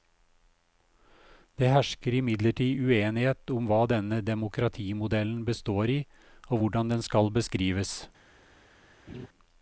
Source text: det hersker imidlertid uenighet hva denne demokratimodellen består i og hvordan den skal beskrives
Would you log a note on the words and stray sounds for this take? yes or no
yes